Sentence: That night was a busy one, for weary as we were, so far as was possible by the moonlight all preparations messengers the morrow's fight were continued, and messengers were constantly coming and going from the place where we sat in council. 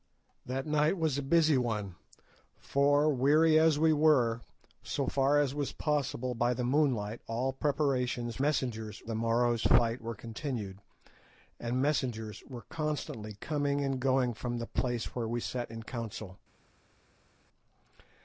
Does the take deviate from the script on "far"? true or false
false